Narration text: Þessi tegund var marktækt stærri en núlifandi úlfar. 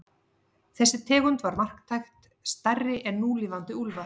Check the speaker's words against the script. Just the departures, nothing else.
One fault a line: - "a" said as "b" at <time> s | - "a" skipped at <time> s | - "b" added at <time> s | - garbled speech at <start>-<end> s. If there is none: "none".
none